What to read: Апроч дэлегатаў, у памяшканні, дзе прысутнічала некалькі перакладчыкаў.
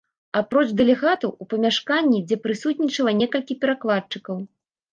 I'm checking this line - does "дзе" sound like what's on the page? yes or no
yes